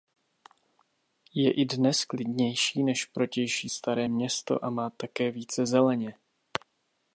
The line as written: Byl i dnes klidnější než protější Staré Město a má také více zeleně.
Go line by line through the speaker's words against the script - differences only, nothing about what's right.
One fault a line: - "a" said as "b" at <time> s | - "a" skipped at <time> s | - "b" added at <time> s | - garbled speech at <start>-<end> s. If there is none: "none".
- "Byl" said as "Je" at 1.3 s